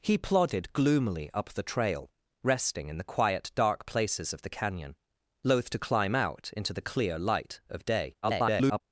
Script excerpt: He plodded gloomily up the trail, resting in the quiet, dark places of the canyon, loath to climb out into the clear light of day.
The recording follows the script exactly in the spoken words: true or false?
false